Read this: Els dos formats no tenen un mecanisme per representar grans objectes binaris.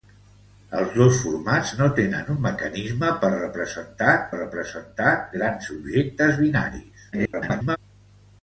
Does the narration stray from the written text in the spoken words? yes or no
yes